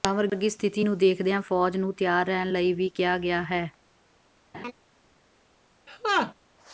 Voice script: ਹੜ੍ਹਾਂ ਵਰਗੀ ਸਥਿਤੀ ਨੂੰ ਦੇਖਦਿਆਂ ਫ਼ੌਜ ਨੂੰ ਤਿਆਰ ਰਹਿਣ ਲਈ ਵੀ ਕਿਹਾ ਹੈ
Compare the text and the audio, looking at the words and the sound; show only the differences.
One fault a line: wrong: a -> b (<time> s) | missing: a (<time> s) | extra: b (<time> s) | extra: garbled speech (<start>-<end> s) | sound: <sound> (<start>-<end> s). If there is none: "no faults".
extra: ਗਿਆ (3.2 s)
sound: laugh (4.5-4.7 s)
sound: laugh (5.9-6.3 s)